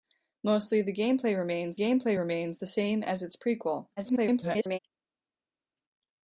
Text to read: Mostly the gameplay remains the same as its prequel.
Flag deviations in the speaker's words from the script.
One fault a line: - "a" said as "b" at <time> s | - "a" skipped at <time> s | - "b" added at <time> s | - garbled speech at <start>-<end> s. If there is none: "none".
- "gameplay remains" added at 1.7 s
- garbled speech at 4.0-4.8 s